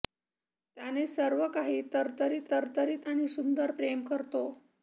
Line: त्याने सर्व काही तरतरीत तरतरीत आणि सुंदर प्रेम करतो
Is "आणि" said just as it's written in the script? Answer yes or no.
yes